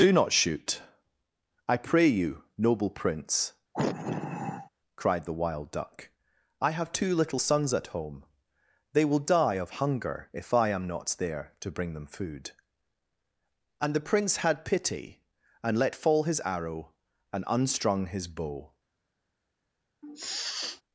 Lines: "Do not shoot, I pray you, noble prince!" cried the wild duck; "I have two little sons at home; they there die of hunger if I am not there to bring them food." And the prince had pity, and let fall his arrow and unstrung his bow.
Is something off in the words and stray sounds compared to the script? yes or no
yes